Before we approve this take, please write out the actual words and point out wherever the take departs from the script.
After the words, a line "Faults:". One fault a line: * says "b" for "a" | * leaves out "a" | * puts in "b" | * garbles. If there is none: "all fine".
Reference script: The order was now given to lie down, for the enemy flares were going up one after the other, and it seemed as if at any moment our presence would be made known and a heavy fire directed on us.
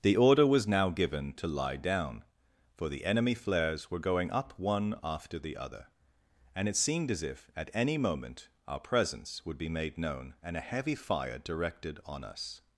The order was now given to lie down, for the enemy flares were going up one after the other, and it seemed as if at any moment our presence would be made known and a heavy fire directed on us.
Faults:
all fine